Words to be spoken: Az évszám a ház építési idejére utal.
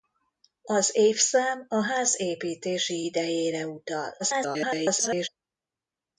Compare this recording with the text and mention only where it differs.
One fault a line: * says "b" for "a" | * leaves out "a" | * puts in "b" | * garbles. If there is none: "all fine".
* garbles